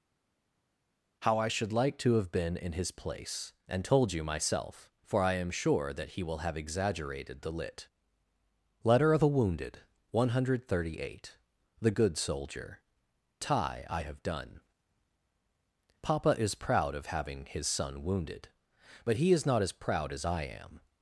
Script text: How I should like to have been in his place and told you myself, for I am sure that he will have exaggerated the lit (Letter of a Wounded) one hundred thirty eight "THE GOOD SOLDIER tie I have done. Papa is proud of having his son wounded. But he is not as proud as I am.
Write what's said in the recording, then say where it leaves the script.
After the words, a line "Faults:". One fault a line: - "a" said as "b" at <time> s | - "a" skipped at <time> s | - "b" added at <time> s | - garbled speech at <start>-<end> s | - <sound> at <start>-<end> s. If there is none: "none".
How I should like to have been in his place and told you myself, for I am sure that he will have exaggerated the lit (Letter of a Wounded) one hundred thirty eight "THE GOOD SOLDIER tie I have done. Papa is proud of having his son wounded. But he is not as proud as I am.
Faults:
none